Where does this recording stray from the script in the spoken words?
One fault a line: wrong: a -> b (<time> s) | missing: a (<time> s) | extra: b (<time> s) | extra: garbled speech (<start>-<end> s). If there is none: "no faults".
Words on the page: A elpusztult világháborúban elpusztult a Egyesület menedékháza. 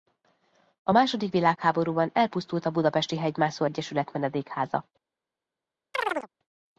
wrong: elpusztult -> második (0.9 s)
extra: Budapesti Hegymászó (2.7 s)